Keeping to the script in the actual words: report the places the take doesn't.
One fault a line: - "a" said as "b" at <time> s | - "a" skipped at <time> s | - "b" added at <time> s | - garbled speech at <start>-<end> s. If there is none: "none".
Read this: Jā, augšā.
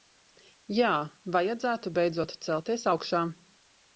- "vajadzētu beidzot celties" added at 1.4 s